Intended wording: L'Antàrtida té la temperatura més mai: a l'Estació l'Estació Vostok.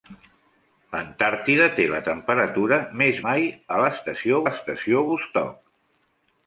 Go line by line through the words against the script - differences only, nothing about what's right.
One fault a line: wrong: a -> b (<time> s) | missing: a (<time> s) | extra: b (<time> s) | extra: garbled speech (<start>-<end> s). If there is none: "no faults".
no faults